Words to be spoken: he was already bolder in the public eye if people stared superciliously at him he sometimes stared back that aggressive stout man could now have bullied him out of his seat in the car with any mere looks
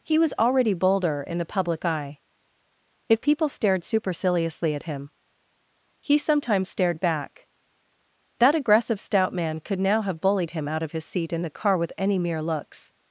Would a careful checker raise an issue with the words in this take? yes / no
no